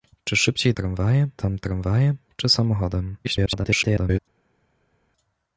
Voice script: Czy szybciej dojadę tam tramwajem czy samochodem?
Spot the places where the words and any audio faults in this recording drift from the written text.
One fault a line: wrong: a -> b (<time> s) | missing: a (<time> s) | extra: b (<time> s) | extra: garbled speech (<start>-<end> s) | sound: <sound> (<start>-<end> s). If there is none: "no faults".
wrong: dojadę -> tramwajem (0.7 s)
extra: garbled speech (3.2-4.2 s)